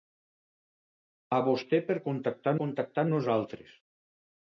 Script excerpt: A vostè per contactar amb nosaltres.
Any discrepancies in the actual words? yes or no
yes